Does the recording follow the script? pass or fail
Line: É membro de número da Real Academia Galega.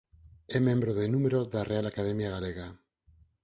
pass